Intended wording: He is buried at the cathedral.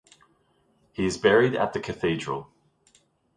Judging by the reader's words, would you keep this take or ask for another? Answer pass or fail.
pass